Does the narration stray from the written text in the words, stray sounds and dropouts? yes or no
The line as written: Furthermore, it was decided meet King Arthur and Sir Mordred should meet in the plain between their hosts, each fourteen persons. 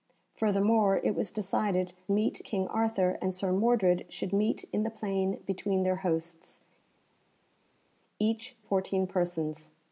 no